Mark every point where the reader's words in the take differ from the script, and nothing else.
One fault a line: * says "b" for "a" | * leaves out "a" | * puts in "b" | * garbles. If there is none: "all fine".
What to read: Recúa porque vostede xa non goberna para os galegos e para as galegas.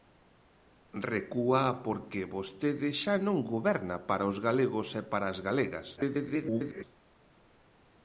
* garbles